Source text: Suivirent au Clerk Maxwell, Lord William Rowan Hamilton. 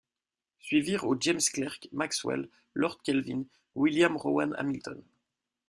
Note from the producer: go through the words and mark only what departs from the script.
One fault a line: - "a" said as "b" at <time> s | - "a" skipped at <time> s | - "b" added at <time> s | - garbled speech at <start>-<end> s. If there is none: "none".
- "James" added at 1.2 s
- "Kelvin" added at 3.0 s